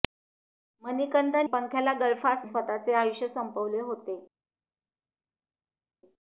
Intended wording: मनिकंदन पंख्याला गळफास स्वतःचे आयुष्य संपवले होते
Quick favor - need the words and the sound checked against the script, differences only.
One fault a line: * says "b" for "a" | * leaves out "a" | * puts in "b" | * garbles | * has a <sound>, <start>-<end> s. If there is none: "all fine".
all fine